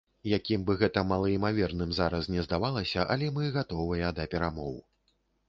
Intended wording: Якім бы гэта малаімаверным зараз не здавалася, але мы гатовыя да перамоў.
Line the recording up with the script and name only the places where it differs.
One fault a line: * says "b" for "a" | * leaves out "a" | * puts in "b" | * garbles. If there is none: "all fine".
all fine